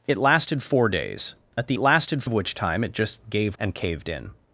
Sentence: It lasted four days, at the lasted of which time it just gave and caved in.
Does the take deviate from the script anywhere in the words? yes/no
no